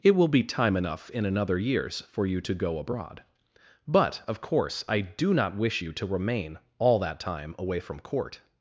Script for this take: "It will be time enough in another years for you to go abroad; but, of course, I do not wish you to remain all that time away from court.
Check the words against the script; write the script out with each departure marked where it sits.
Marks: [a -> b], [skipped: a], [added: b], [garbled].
"It will be time enough in another years for you to go abroad; but, of course, I do not wish you to remain all that time away from court.